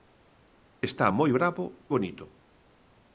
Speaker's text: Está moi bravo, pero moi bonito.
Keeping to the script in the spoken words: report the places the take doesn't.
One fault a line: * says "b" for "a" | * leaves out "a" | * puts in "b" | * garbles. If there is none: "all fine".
* leaves out "pero moi"